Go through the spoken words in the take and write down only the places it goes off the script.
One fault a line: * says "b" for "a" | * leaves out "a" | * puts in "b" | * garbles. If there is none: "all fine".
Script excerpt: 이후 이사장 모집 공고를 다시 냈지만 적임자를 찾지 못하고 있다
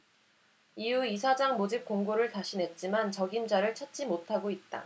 all fine